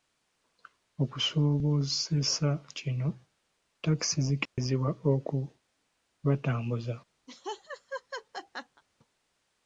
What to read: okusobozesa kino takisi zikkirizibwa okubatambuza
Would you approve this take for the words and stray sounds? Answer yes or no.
no